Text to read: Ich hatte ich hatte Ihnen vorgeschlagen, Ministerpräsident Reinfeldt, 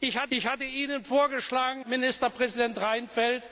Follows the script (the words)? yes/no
yes